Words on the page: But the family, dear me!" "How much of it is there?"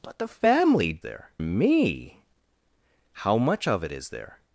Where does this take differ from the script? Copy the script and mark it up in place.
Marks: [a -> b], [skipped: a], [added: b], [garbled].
But the family, [dear -> there] me!" "How much of it is there?"